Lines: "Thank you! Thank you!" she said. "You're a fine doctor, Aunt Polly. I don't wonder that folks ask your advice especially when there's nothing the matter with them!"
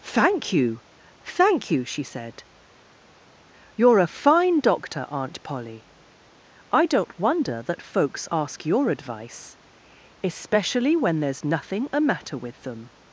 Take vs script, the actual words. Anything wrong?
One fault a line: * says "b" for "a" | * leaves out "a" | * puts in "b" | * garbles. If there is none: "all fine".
* says "a" for "the"